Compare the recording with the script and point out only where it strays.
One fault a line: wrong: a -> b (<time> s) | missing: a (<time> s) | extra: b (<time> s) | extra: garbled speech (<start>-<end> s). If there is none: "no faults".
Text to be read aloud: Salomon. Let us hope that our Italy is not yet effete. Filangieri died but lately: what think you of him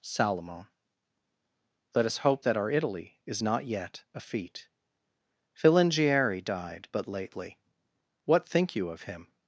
no faults